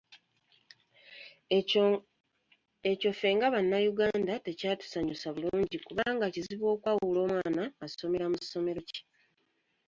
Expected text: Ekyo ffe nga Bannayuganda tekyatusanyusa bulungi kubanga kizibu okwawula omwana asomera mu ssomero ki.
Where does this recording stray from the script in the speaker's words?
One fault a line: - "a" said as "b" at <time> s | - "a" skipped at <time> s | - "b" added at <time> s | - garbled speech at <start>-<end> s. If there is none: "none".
none